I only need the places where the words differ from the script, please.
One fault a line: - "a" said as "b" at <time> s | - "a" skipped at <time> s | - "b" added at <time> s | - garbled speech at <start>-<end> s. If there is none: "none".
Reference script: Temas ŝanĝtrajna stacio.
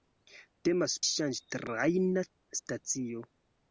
none